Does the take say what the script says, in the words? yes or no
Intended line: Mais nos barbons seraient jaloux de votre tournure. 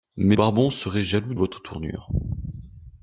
no